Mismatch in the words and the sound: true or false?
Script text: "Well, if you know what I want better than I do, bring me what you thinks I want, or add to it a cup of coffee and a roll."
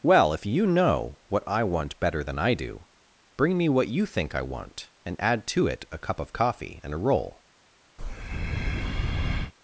true